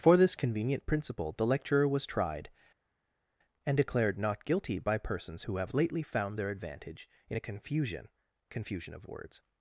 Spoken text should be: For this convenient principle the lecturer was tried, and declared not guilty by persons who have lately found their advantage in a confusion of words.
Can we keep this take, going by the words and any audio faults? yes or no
no